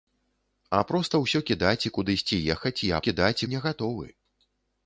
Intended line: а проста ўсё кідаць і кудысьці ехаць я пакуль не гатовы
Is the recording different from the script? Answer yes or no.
yes